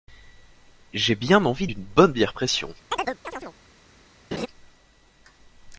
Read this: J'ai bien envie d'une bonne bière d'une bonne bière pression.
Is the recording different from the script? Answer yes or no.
yes